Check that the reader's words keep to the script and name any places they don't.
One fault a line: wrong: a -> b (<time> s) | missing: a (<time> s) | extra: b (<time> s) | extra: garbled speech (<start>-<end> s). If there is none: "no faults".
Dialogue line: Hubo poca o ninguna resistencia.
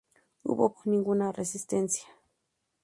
missing: poca (0.7 s)